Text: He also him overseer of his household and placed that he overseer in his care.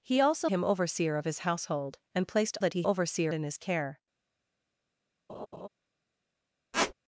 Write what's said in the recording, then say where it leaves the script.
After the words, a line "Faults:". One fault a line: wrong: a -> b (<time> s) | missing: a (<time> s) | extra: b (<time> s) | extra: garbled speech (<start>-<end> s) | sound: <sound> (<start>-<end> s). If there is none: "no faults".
He also him overseer of his household and placed that he overseer in his care.
Faults:
sound: laugh (5.3-5.7 s)
sound: squeak (6.7-6.9 s)